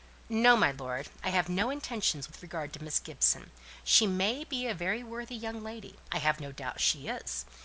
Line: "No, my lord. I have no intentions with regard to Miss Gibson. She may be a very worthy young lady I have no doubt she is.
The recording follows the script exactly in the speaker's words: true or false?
true